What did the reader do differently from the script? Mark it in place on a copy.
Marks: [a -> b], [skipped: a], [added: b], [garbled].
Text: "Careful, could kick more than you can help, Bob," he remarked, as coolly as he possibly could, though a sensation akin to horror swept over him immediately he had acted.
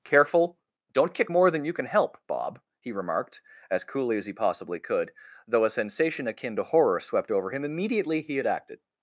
"Careful, [could -> don't] kick more than you can help, Bob," he remarked, as coolly as he possibly could, though a sensation akin to horror swept over him immediately he had acted.